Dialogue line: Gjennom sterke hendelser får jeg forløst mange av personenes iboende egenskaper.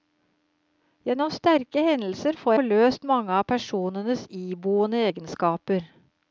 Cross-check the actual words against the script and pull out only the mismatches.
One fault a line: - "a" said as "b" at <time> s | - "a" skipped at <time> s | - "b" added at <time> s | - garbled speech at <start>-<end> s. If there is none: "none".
- "jeg" skipped at 2.5 s